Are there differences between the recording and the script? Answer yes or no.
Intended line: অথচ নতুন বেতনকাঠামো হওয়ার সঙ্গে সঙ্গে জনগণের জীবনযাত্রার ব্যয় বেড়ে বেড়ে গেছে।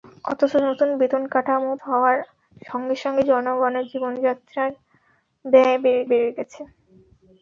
no